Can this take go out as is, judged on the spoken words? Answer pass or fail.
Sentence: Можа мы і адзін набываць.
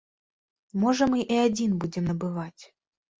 fail